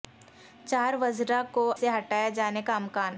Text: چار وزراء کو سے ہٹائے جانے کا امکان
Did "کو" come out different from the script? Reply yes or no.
no